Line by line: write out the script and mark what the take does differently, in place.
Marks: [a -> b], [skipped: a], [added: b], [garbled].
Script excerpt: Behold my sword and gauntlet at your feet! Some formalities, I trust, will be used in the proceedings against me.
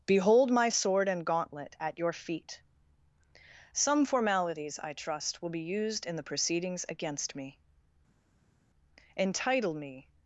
Behold my sword and gauntlet at your feet! Some formalities, I trust, will be used in the proceedings against me. [added: Entitle me]